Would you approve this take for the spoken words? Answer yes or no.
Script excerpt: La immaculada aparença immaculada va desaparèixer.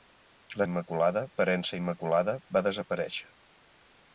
yes